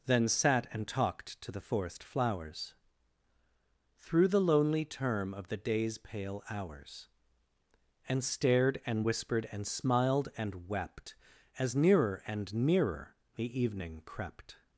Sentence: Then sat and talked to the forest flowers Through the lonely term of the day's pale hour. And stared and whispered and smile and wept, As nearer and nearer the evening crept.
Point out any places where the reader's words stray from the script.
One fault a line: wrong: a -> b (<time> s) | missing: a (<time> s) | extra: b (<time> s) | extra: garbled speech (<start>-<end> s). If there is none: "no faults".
wrong: hour -> hours (6.5 s)
wrong: smile -> smiled (9.7 s)